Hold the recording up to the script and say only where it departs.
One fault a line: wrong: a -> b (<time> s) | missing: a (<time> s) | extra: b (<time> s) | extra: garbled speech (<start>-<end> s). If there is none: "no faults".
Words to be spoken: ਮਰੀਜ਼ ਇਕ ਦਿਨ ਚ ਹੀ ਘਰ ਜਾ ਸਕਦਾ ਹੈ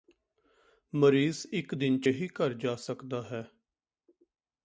no faults